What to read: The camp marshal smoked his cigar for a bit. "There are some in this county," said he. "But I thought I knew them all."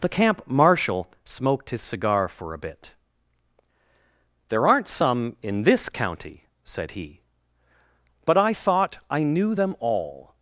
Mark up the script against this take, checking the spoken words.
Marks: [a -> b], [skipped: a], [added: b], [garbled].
The camp marshal smoked his cigar for a bit. "There [are -> aren't] some in this county," said he. "But I thought I knew them all."